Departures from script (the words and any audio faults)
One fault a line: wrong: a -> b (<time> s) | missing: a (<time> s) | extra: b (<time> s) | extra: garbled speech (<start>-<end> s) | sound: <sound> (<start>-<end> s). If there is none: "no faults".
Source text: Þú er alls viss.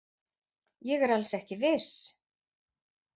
wrong: Þú -> Ég (0.9 s)
extra: ekki (1.4 s)